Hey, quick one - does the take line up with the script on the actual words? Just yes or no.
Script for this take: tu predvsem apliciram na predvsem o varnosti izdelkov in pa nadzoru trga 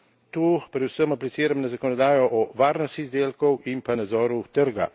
no